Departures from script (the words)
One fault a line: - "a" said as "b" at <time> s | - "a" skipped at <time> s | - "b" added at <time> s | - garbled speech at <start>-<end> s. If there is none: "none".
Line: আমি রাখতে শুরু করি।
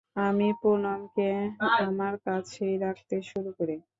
- "পুনমকে আমার কাছেই" added at 0.6 s